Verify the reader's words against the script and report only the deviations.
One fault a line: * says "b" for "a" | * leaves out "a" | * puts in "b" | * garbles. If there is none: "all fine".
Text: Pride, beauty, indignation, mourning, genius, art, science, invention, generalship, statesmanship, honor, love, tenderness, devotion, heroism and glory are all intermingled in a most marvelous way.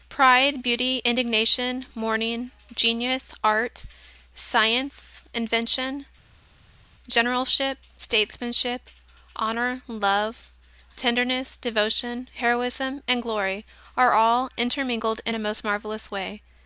all fine